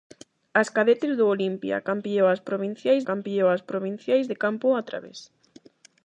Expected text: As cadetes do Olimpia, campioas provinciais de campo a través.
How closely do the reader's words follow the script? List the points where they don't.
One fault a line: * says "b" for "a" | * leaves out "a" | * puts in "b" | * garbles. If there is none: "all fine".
* puts in "campioas provinciais"